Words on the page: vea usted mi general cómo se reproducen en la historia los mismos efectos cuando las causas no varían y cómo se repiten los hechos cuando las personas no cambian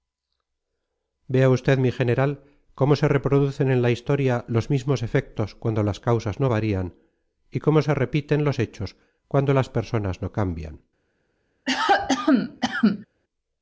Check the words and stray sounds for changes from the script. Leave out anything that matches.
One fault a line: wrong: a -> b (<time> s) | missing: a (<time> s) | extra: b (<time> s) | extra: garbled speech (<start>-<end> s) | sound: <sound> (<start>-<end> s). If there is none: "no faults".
sound: cough (11.7-13.1 s)